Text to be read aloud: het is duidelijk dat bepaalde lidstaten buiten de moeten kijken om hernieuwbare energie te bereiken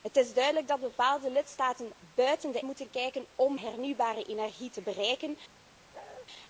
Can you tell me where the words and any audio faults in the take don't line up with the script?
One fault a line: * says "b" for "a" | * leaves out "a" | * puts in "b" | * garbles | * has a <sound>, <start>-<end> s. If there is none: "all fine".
* has a bark, 5.9-6.3 s